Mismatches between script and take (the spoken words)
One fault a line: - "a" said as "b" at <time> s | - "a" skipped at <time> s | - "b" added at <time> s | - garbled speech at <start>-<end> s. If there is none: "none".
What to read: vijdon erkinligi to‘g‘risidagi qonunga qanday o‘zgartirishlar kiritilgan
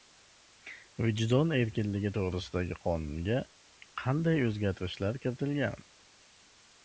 none